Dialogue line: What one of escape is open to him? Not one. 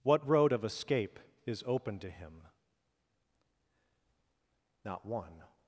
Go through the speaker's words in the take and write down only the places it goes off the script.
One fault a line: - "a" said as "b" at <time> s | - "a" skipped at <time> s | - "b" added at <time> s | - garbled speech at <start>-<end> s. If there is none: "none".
- "one" said as "road" at 0.3 s